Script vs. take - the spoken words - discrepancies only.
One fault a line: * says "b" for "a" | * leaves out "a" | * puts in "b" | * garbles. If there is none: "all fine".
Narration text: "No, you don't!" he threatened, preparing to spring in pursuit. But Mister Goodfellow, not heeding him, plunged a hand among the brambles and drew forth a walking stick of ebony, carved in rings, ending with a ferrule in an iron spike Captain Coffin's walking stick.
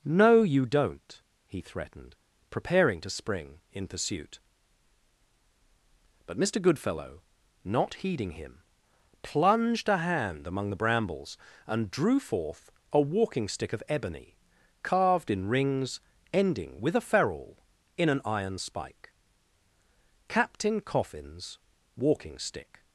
all fine